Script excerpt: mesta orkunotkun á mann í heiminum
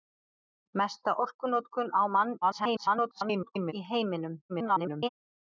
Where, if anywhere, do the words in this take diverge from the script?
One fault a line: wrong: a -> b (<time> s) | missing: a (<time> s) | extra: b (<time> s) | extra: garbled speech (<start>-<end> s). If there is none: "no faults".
extra: garbled speech (2.4-3.7 s)
extra: garbled speech (4.5-5.1 s)